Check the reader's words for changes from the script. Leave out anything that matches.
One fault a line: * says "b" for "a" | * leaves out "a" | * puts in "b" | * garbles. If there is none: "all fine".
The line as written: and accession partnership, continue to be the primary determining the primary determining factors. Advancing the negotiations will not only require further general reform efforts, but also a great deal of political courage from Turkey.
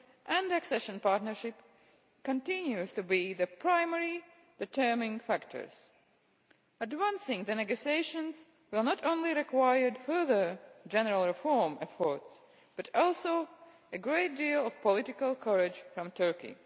* leaves out "the primary determining"